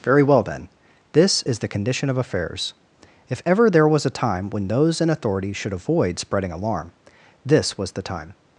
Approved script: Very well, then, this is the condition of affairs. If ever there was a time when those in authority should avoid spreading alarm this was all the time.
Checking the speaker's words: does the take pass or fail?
fail